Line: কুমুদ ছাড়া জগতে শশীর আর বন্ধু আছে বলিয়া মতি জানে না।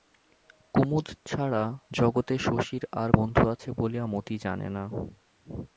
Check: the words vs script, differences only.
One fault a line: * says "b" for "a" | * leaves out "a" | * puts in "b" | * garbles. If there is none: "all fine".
all fine